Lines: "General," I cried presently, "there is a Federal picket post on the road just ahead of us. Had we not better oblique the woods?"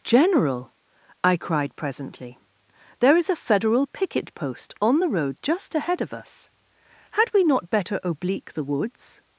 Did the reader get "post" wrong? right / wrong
right